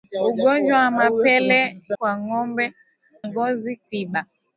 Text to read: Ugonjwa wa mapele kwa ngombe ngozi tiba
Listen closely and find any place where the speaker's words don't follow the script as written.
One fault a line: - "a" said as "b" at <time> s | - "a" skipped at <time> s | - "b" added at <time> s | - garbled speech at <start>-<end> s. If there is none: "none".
none